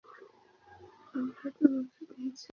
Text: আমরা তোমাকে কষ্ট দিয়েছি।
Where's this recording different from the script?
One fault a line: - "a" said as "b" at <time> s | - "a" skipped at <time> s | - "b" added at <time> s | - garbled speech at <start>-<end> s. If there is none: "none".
- "কষ্ট" skipped at 2.0 s